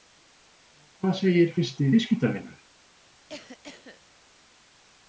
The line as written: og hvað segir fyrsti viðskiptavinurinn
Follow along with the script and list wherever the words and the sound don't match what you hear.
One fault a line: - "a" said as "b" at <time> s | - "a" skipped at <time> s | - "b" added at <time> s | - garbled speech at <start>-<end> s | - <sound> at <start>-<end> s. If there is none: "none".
- cough at 3.3-4.0 s